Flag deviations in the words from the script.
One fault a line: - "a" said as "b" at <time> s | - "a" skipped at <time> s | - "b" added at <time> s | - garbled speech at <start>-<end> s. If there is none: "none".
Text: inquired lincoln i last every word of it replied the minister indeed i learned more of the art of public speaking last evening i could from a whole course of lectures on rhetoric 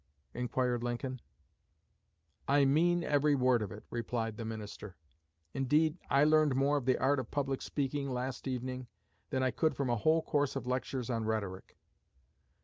- "last" said as "mean" at 2.6 s
- "than" added at 9.3 s